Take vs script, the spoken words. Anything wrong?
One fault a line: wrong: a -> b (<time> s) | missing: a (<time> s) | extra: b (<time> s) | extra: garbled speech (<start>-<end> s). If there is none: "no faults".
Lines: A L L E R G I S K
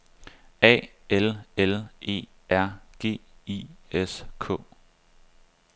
no faults